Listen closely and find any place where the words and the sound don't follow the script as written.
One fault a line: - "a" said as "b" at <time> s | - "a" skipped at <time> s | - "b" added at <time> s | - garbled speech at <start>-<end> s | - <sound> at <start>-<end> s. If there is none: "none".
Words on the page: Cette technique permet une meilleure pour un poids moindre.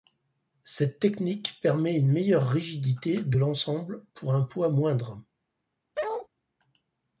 - "rigidité de l'ensemble" added at 2.5 s
- bark at 5.9-6.3 s